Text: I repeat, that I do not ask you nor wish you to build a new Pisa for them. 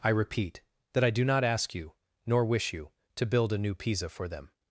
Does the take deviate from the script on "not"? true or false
false